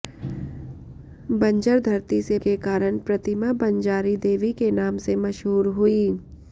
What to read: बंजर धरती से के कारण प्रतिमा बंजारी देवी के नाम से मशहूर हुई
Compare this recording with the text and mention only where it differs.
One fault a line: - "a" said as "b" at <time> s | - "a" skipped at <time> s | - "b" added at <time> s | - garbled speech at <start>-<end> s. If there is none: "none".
none